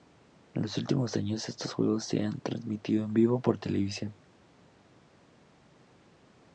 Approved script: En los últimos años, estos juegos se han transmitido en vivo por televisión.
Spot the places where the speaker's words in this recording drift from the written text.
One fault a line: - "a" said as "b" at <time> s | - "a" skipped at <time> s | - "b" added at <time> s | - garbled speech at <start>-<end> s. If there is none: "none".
none